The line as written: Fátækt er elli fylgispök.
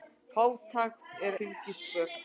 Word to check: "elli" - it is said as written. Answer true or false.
false